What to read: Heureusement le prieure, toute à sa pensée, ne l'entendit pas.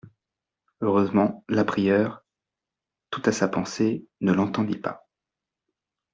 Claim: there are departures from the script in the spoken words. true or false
true